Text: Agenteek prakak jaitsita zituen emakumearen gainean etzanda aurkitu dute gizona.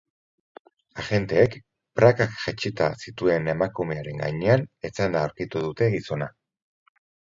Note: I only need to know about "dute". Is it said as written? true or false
true